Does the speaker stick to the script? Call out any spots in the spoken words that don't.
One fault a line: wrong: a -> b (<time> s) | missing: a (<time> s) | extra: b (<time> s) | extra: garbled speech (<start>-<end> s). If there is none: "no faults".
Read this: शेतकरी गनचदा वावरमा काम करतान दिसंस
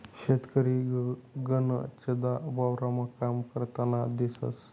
no faults